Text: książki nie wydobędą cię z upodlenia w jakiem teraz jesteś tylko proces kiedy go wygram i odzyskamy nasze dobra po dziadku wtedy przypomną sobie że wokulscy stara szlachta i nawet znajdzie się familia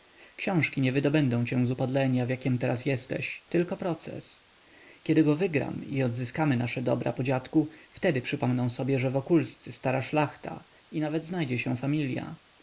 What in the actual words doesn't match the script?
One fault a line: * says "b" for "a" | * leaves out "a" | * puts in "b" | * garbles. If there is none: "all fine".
all fine